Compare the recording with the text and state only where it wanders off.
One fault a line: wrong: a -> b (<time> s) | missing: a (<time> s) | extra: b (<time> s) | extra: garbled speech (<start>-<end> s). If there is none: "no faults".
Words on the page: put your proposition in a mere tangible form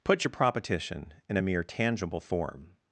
no faults